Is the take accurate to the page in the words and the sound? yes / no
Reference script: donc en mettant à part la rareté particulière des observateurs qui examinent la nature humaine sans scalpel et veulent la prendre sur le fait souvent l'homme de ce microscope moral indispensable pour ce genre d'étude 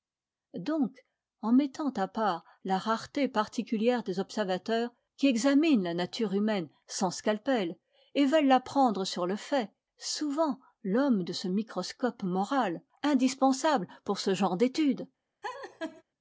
no